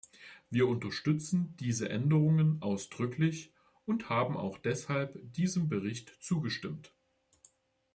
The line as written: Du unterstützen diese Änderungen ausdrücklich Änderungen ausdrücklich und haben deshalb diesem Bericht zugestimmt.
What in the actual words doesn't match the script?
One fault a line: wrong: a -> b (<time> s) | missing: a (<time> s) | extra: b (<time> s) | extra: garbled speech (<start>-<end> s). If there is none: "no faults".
wrong: Du -> Wir (0.5 s)
missing: Änderungen ausdrücklich (3.5 s)
extra: auch (4.3 s)